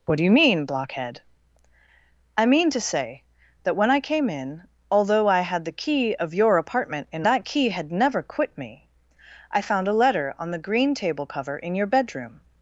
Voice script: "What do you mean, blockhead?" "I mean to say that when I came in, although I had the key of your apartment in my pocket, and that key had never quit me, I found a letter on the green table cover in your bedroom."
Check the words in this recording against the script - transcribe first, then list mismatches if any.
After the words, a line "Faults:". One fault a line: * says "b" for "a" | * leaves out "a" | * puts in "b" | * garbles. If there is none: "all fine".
"What do you mean, blockhead?" "I mean to say that when I came in, although I had the key of your apartment in that key had never quit me, I found a letter on the green table cover in your bedroom."
Faults:
* leaves out "my pocket and"